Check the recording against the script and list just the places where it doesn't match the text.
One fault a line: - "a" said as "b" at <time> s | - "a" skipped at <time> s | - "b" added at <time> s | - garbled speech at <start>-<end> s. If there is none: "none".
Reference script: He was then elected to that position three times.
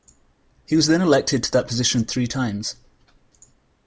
none